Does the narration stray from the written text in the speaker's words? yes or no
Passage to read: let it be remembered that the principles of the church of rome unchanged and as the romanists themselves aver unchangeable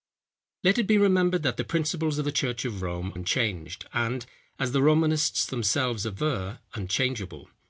no